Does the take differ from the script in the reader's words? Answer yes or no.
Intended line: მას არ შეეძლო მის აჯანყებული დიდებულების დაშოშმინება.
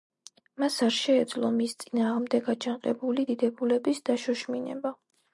yes